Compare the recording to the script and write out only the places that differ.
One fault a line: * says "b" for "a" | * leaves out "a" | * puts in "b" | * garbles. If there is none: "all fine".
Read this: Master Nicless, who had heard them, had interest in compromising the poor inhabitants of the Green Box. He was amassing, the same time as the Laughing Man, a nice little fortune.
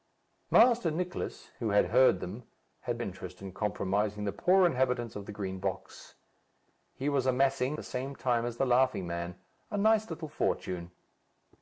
all fine